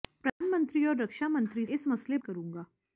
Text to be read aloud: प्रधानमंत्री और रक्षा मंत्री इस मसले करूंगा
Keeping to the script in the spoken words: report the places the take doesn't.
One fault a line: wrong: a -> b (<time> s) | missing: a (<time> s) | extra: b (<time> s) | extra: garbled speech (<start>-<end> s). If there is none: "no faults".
no faults